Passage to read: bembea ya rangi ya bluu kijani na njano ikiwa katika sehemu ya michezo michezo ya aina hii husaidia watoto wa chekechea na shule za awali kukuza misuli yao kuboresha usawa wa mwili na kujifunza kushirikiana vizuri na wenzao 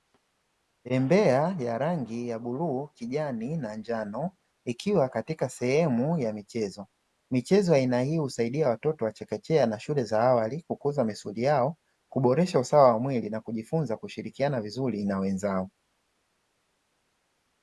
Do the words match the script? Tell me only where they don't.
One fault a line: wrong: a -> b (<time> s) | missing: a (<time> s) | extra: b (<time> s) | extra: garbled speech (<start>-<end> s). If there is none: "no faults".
no faults